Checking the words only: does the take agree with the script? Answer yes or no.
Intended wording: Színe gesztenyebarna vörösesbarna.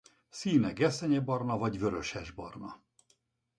no